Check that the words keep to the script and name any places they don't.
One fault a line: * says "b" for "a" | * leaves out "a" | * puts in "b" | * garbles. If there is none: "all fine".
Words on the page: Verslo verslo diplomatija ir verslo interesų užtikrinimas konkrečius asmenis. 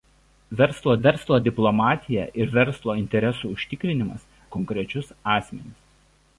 all fine